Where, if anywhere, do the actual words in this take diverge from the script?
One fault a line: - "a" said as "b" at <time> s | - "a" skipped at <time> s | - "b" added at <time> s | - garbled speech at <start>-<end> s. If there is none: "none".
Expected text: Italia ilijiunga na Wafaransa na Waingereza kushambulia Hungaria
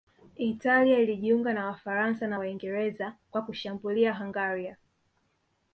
- "kwa" added at 3.3 s